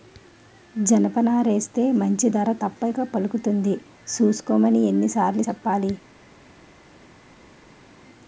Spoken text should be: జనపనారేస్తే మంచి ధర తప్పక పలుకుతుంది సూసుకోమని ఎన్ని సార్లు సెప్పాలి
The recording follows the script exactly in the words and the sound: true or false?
true